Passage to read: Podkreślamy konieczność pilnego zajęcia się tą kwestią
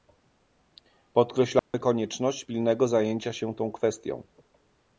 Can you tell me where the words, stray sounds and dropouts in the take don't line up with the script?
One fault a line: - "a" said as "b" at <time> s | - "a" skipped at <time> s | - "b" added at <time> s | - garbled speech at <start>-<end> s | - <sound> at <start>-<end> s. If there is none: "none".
- dropout at 1.6-1.7 s